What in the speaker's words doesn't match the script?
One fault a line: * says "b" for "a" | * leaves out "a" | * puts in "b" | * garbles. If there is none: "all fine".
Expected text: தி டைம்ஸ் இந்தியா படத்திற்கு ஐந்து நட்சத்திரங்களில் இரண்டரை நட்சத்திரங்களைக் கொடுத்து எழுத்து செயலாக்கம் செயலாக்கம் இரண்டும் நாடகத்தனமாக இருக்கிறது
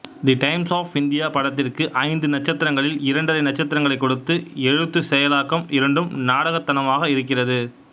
* puts in "ஆஃப்"
* leaves out "செயலாக்கம்"